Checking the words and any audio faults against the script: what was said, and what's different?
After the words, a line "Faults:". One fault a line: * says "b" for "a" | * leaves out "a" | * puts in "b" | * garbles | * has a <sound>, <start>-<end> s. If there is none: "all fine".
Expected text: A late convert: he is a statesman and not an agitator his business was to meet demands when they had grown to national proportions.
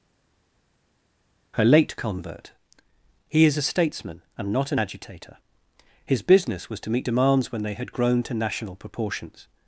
Her late convert: he is a statesman and not an agitator his business was to meet demands when they had grown to national proportions.
Faults:
* says "Her" for "A"